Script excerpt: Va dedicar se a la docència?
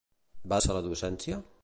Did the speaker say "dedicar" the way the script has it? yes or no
no